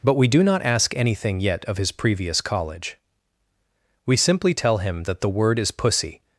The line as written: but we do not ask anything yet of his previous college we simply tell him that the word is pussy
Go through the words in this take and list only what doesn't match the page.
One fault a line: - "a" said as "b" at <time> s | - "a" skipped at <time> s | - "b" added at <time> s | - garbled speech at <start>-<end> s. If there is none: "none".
none